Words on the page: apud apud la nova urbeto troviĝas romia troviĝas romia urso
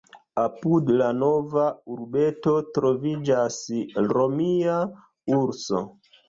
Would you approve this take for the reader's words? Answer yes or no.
no